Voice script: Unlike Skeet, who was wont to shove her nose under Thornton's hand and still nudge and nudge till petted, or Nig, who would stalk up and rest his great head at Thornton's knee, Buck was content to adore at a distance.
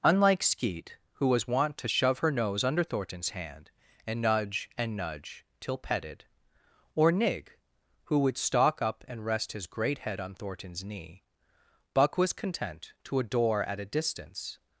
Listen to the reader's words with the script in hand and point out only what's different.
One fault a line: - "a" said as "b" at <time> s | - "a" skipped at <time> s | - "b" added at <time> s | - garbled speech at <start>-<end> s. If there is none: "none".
- "still" skipped at 4.2 s
- "at" said as "on" at 10.2 s